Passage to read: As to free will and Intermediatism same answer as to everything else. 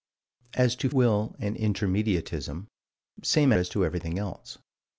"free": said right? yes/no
no